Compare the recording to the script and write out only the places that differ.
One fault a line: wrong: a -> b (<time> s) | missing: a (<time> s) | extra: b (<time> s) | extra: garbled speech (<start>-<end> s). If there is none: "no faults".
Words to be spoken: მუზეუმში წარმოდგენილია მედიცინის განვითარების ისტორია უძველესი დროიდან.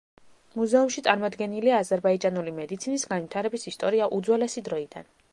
extra: აზერბაიჯანული (1.8 s)